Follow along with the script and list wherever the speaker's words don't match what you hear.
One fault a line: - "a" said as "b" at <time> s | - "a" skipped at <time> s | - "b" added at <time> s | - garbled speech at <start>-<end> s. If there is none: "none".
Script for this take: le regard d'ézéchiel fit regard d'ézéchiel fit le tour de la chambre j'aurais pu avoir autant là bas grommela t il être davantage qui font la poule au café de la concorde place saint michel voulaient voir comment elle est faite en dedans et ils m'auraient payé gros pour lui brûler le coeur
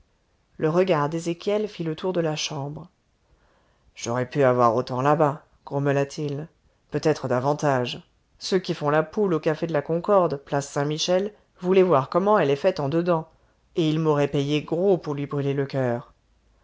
- "regard d'ézéchiel fit" skipped at 1.8 s
- "peut" added at 6.9 s
- "ceux" added at 8.4 s